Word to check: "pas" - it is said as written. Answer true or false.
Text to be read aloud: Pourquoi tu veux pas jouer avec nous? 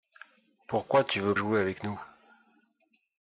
false